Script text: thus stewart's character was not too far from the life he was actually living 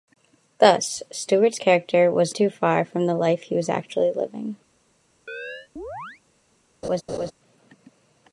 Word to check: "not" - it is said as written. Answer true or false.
false